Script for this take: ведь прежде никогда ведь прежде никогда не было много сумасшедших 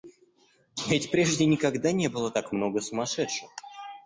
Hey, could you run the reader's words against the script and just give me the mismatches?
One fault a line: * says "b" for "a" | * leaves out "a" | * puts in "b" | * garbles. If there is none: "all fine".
* leaves out "ведь прежде никогда"
* puts in "так"